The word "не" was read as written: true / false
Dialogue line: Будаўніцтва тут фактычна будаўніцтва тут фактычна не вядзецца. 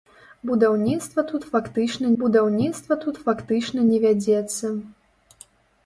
true